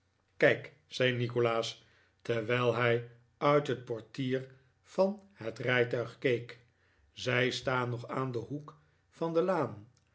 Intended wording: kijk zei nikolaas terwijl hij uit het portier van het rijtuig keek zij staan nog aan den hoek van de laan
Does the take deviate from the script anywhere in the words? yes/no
no